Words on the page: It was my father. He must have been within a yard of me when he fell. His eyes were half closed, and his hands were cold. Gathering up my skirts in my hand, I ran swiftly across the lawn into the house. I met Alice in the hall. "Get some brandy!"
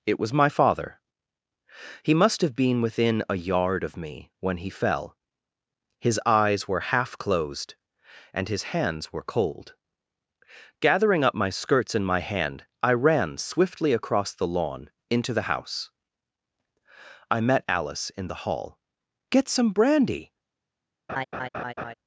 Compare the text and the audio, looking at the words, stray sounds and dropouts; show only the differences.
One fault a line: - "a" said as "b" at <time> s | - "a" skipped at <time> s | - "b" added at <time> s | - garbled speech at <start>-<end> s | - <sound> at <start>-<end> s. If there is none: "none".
- laugh at 21.1-21.9 s